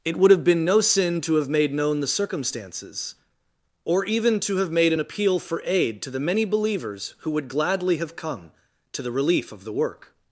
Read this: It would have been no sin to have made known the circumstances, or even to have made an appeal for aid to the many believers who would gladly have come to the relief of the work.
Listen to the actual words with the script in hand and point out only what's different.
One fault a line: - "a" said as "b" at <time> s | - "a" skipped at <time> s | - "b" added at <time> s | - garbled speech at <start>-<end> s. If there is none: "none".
none